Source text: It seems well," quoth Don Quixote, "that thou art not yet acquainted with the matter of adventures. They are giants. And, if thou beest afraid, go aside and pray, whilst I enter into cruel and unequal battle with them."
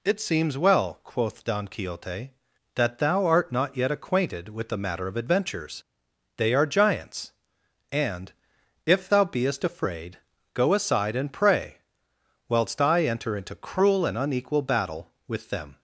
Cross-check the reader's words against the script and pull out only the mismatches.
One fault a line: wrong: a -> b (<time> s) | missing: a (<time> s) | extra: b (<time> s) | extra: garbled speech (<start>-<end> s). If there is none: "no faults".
no faults